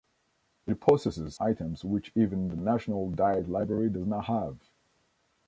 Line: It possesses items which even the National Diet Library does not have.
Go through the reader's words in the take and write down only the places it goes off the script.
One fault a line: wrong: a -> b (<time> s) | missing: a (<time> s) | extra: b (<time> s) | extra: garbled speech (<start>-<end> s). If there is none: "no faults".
no faults